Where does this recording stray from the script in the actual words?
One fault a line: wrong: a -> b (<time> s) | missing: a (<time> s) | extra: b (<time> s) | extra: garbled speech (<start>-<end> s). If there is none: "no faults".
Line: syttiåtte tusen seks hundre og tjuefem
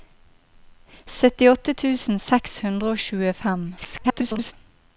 extra: garbled speech (3.8-4.5 s)